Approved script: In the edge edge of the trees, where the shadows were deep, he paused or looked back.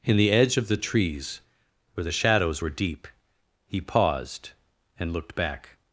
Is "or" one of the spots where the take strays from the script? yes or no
yes